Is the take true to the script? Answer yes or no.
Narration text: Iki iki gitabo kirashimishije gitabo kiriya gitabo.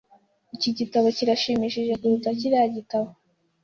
no